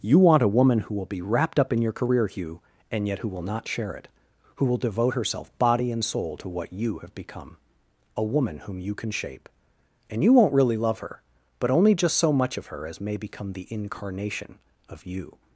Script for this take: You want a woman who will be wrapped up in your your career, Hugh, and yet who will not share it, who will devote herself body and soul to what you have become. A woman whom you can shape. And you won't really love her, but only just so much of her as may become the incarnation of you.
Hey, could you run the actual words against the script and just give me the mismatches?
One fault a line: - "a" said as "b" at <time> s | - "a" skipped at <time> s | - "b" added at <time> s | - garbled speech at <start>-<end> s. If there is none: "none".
- "your" skipped at 1.9 s